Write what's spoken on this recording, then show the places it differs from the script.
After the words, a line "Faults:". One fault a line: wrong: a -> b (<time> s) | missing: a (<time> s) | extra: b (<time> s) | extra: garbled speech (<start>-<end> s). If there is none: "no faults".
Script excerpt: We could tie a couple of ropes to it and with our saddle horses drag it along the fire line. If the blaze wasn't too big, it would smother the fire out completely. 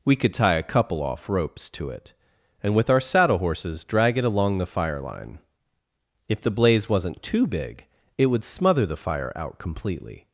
We could tie a couple off ropes to it and with our saddle horses drag it along the fire line. If the blaze wasn't too big, it would smother the fire out completely.
Faults:
wrong: of -> off (1.0 s)